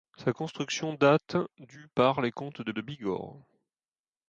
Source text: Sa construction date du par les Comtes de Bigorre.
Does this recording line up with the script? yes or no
no